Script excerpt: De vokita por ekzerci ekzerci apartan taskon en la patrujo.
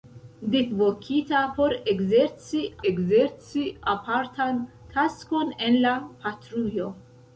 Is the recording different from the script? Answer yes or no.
no